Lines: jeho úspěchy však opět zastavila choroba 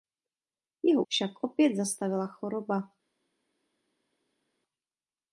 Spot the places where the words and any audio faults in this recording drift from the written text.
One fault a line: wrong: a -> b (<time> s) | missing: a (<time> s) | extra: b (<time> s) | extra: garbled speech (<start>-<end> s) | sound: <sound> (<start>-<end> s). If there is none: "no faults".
missing: úspěchy (1.0 s)